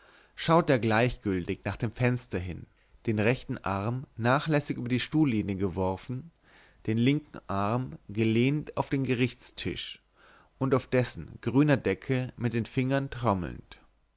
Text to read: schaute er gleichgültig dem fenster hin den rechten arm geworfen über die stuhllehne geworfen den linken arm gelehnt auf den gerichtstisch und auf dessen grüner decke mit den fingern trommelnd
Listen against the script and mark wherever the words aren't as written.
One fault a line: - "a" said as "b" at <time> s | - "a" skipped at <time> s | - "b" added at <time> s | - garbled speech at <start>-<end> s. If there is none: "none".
- "nach" added at 1.6 s
- "geworfen" said as "nachlässig" at 4.2 s